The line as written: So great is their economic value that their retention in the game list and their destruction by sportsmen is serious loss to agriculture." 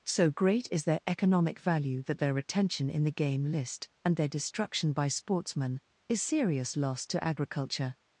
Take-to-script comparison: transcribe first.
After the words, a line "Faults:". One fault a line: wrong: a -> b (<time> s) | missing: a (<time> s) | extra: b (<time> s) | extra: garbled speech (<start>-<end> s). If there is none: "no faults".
So great is their economic value that their retention in the game list and their destruction by sportsmen is serious loss to agriculture."
Faults:
no faults